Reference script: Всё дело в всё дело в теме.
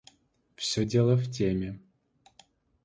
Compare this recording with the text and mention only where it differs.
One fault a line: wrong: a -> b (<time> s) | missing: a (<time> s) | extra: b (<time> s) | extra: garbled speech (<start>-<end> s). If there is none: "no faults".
missing: всё дело в (1.3 s)